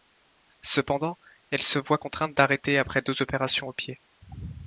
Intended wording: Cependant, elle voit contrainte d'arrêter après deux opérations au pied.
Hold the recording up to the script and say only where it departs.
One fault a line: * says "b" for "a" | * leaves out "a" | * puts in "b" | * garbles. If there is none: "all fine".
* puts in "se"